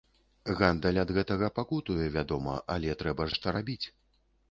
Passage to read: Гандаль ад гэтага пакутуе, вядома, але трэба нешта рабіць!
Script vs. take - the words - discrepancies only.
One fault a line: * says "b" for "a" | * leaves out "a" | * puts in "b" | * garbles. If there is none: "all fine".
all fine